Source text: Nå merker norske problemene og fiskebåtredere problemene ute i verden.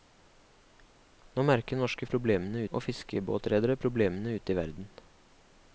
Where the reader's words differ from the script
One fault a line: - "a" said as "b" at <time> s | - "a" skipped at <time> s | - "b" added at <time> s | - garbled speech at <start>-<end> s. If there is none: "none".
none